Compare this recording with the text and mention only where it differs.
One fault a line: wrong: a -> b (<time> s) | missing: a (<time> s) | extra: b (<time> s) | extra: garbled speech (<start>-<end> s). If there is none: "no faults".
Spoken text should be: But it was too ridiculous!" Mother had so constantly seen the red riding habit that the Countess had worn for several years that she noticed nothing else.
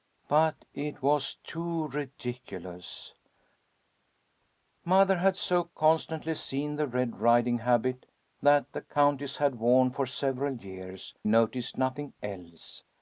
missing: that she (11.1 s)